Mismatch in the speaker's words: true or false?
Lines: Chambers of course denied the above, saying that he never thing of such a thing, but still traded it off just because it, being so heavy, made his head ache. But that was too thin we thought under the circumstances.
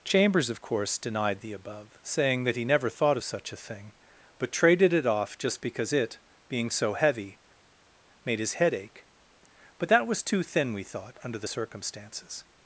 true